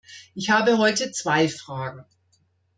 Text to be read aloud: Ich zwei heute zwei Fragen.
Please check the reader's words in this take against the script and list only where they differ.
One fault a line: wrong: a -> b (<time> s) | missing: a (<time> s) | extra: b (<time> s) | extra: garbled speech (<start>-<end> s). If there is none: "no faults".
wrong: zwei -> habe (0.5 s)